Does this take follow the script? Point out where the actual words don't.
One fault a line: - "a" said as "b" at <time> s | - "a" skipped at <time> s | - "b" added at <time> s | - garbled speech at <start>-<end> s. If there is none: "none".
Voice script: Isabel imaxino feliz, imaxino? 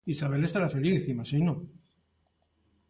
- "imaxino" said as "estará" at 0.5 s